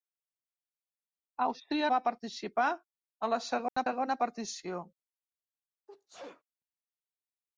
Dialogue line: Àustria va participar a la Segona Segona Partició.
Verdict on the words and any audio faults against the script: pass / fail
fail